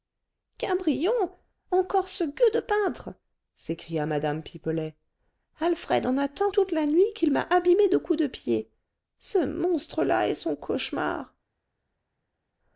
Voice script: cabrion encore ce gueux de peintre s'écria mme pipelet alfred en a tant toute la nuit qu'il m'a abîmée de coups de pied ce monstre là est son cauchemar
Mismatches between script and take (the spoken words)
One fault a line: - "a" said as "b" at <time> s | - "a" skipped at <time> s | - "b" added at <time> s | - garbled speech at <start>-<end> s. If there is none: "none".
none